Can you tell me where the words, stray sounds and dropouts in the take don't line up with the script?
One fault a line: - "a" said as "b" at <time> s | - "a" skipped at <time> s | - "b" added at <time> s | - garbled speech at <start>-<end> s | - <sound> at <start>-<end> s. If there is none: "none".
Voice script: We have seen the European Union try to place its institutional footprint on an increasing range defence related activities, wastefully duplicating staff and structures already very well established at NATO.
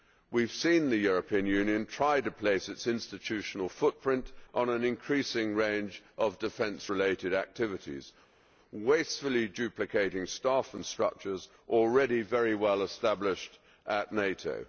- "of" added at 6.2 s